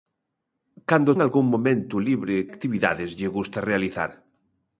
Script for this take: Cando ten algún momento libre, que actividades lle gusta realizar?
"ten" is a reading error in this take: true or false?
true